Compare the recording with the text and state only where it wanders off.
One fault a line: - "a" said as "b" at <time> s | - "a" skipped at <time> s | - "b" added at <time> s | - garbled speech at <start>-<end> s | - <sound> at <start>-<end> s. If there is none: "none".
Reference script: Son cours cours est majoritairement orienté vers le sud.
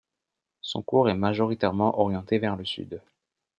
- "cours" skipped at 1.1 s